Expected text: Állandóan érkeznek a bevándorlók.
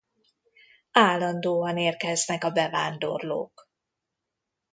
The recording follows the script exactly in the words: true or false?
true